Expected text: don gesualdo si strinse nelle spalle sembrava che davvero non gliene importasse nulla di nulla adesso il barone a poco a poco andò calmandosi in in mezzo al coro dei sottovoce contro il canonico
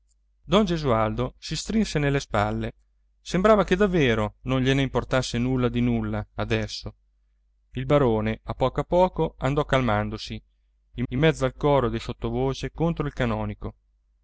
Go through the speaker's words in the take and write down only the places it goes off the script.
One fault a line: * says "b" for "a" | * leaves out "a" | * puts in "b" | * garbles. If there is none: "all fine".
all fine